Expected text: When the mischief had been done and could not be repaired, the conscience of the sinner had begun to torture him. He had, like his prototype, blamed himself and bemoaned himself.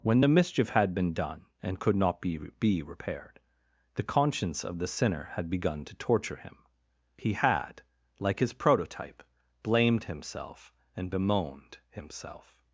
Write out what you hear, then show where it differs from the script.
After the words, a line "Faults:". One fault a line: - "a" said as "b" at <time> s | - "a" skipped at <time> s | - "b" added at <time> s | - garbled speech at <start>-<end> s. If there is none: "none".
When the mischief had been done and could not be be repaired, the conscience of the sinner had begun to torture him. He had, like his prototype, blamed himself and bemoaned himself.
Faults:
- "be" added at 2.6 s